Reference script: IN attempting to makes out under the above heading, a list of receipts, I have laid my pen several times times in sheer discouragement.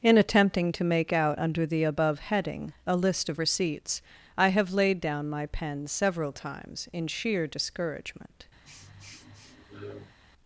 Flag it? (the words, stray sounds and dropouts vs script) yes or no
yes